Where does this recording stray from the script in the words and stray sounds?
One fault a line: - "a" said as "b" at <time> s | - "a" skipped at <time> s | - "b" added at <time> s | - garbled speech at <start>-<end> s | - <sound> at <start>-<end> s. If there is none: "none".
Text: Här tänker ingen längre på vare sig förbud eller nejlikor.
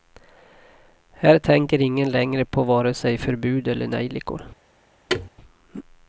- thud at 5.1-5.3 s